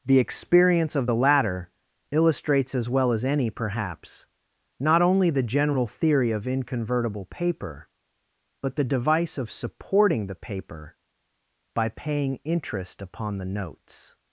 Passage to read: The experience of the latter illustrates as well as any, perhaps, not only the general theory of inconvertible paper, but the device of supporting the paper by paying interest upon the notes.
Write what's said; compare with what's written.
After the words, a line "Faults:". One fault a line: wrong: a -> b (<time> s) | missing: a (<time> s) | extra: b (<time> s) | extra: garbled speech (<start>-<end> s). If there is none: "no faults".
The experience of the latter illustrates as well as any, perhaps, not only the general theory of inconvertible paper, but the device of supporting the paper by paying interest upon the notes.
Faults:
no faults